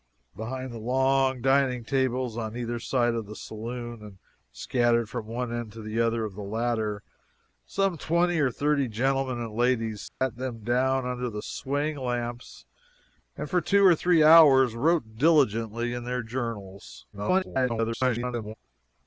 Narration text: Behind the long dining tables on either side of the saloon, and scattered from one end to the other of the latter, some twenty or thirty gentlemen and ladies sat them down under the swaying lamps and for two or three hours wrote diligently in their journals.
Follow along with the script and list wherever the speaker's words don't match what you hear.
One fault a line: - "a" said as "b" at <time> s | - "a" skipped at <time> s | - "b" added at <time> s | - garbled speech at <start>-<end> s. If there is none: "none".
- garbled speech at 17.1-18.5 s